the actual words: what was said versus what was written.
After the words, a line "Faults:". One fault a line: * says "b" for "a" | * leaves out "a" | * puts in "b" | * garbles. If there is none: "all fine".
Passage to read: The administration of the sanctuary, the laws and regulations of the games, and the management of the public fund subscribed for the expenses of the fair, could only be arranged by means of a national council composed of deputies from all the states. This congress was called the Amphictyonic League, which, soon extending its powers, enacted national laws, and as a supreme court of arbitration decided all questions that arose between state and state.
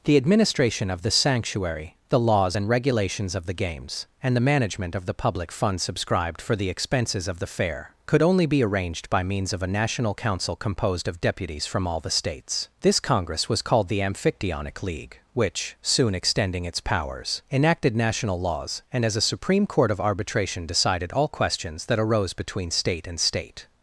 The administration of the sanctuary, the laws and regulations of the games, and the management of the public fund subscribed for the expenses of the fair, could only be arranged by means of a national council composed of deputies from all the states. This congress was called the Amphictyonic League, which, soon extending its powers, enacted national laws, and as a supreme court of arbitration decided all questions that arose between state and state.
Faults:
all fine